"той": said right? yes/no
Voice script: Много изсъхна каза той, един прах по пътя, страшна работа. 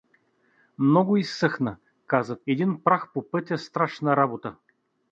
no